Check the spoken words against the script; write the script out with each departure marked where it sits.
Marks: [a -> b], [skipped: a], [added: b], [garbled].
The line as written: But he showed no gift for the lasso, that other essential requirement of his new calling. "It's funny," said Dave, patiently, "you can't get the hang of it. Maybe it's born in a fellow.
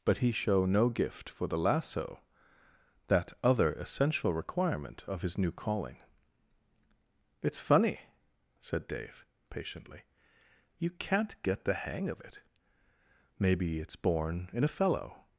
But he [showed -> show] no gift for the lasso, that other essential requirement of his new calling. "It's funny," said Dave, patiently, "you can't get the hang of it. Maybe it's born in a fellow.